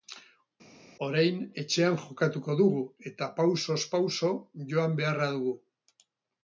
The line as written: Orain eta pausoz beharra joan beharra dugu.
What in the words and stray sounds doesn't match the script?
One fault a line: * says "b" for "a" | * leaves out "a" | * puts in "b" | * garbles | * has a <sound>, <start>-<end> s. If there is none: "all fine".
* puts in "etxean jokatuko dugu"
* says "pauso" for "beharra"